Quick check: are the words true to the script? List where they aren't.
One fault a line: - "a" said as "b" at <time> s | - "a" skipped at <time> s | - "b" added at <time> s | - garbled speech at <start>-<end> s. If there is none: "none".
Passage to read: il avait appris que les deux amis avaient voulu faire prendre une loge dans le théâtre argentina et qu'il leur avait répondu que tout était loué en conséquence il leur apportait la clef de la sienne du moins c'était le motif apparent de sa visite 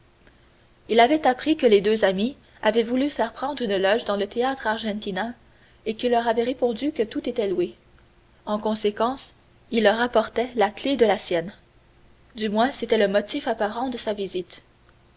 none